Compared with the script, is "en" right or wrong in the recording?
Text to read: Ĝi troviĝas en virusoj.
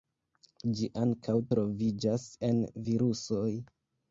right